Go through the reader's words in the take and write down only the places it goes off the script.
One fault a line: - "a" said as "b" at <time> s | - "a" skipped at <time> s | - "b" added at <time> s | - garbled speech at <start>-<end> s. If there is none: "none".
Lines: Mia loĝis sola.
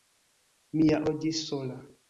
none